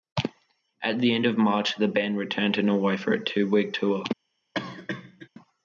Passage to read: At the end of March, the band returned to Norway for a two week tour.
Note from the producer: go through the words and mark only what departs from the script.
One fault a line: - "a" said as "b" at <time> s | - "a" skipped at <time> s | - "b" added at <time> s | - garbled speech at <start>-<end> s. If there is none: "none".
none